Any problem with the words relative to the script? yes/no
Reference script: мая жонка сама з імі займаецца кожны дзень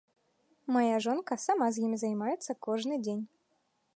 no